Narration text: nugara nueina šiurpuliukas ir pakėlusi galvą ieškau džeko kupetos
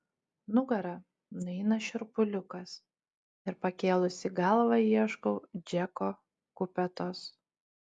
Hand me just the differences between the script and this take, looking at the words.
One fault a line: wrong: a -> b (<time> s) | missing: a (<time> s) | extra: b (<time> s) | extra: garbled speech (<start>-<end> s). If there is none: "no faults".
no faults